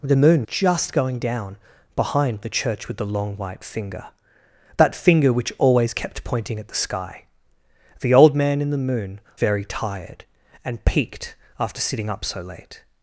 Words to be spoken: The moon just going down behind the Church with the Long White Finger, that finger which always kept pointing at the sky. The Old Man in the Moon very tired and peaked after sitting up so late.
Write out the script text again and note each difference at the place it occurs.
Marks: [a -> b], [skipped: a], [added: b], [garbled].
The moon just going down behind the Church with the Long White Finger, that finger which always kept pointing at the sky. The Old Man in the Moon very tired and peaked after sitting up so late.